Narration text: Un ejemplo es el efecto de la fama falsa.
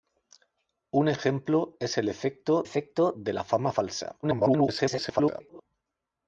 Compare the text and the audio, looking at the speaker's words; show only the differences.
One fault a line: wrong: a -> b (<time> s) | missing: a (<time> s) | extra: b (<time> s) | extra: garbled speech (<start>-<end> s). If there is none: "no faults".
extra: efecto (2.6 s)
extra: garbled speech (4.2-5.6 s)